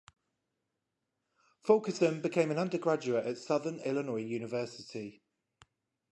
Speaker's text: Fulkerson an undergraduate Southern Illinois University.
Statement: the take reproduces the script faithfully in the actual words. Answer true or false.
false